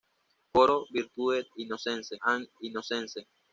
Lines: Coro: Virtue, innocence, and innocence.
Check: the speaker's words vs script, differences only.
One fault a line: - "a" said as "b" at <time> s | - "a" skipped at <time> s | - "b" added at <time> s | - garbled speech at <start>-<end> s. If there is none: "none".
none